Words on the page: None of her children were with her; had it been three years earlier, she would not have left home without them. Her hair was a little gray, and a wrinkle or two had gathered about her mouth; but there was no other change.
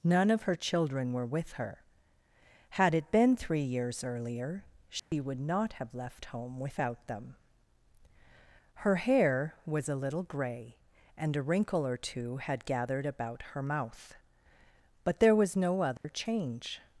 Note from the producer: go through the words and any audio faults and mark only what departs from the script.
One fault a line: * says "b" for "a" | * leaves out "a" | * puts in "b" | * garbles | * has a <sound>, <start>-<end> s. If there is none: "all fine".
* has a dropout, 5.0-5.1 s
* has a dropout, 16.0-16.0 s